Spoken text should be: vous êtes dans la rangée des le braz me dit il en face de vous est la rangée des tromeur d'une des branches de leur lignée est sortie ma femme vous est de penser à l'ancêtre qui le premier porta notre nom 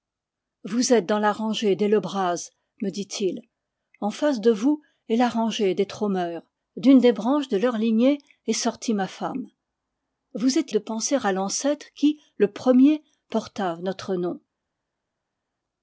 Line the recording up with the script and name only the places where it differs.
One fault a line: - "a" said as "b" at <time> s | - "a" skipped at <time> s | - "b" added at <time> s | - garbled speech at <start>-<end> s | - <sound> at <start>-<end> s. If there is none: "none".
none